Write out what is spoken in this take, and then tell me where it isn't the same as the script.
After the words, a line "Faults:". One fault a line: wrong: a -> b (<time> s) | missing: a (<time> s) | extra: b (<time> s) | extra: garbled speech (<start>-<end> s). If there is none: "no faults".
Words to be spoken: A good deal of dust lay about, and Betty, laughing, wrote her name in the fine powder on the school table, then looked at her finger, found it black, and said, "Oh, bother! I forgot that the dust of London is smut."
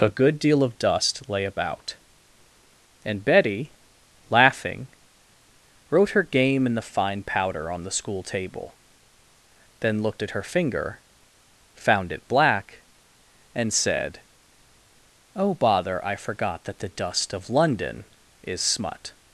A good deal of dust lay about, and Betty, laughing, wrote her game in the fine powder on the school table, then looked at her finger, found it black, and said, "Oh, bother! I forgot that the dust of London is smut."
Faults:
wrong: name -> game (6.2 s)